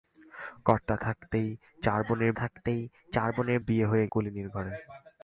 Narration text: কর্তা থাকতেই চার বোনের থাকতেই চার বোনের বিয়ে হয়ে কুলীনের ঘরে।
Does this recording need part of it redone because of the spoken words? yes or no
no